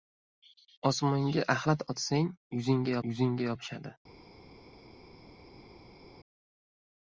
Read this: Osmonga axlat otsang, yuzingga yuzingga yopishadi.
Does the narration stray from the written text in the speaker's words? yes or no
no